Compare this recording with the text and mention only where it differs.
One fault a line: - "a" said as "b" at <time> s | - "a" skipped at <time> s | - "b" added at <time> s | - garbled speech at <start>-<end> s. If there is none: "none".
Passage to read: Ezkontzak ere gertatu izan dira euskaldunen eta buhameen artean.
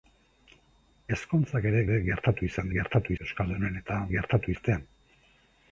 - "ere" added at 1.9 s
- "dira" said as "gertatu" at 2.7 s
- "buhameen" said as "gertatu" at 4.1 s